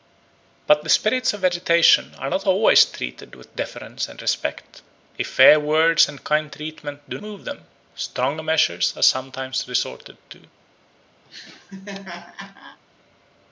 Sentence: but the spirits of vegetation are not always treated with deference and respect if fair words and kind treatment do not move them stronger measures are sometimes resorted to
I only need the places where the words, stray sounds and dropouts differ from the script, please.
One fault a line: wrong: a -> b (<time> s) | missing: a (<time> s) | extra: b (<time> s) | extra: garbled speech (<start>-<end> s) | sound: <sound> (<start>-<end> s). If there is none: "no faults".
missing: not (7.2 s)
sound: laugh (11.2-12.8 s)